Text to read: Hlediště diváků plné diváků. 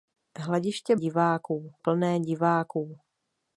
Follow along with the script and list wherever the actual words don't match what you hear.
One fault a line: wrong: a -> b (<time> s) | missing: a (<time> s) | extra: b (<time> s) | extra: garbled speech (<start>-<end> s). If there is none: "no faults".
no faults